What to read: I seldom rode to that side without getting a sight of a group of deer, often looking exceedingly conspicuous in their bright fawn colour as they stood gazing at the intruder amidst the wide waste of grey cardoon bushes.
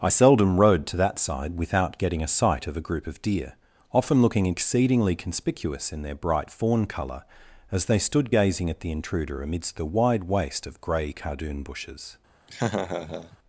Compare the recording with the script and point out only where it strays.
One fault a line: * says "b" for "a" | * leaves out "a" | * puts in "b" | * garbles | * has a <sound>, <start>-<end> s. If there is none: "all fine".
* has a laugh, 12.5-13.4 s